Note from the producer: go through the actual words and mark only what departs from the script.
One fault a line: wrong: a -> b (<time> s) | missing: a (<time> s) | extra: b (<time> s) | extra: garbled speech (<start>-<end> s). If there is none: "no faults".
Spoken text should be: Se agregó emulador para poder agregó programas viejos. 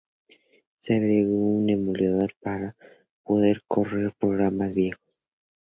extra: un (1.4 s)
wrong: agregó -> correr (3.7 s)